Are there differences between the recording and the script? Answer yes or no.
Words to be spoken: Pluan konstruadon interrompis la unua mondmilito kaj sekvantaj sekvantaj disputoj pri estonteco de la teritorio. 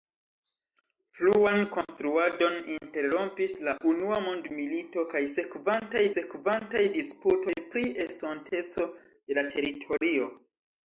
no